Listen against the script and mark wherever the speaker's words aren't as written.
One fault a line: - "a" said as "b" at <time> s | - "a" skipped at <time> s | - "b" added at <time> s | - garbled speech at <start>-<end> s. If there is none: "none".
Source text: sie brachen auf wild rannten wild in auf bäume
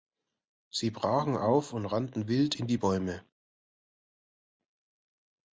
- "wild" said as "und" at 1.7 s
- "auf" said as "die" at 2.7 s